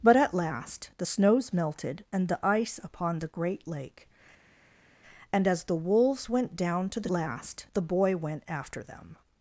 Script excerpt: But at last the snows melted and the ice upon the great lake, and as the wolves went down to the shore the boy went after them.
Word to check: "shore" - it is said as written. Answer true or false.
false